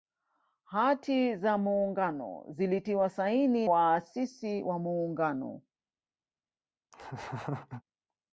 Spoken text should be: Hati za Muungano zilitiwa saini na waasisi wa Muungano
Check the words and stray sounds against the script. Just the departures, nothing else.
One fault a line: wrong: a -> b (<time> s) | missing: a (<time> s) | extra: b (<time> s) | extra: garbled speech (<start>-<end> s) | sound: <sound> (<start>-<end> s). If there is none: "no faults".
missing: na (3.7 s)
sound: laugh (6.9-7.8 s)